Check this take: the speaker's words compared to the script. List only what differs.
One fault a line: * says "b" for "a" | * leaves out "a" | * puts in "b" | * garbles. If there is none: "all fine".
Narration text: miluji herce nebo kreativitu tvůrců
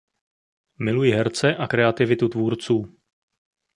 * says "a" for "nebo"